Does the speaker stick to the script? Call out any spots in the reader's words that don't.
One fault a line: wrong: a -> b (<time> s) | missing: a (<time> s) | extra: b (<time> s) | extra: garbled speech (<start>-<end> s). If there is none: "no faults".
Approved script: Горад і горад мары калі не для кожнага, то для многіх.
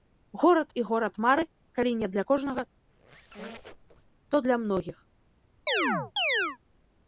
no faults